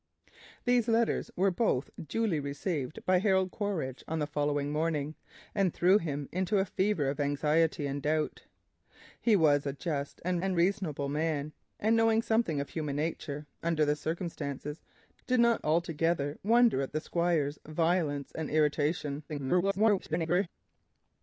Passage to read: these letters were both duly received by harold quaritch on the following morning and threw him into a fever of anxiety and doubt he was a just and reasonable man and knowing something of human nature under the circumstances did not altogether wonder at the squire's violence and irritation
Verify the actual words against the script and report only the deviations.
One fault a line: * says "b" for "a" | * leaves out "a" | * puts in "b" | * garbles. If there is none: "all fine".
* puts in "and"
* garbles